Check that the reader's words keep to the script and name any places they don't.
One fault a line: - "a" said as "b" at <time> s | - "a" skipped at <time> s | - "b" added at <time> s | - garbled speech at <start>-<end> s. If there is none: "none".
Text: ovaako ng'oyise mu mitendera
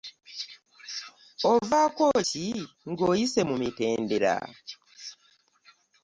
- "ki" added at 2.3 s